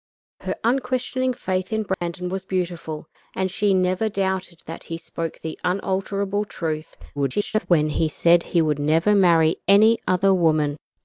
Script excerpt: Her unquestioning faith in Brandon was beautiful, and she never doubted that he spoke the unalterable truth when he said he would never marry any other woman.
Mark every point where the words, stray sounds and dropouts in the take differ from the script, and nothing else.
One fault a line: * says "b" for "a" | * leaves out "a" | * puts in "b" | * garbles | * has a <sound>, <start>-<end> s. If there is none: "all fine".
* has a dropout, 1.9-2.0 s
* garbles